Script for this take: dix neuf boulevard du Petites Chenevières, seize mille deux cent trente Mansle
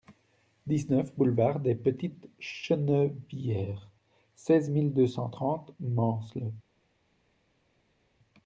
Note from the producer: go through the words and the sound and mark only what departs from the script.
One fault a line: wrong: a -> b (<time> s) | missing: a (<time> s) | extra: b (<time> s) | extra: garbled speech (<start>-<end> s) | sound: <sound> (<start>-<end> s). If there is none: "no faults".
wrong: du -> des (1.6 s)